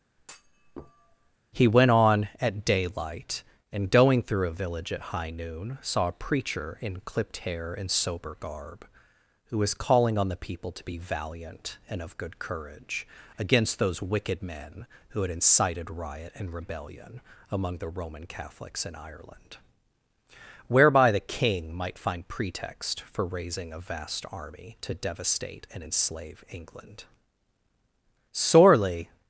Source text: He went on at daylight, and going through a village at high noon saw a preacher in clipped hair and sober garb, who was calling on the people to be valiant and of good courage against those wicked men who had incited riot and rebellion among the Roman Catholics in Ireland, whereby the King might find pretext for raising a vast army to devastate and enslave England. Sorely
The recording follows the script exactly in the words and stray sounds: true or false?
false